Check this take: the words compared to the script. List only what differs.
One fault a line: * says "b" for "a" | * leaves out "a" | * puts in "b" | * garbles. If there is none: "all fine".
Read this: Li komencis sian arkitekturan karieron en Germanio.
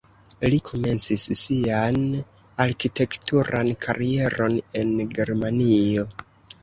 all fine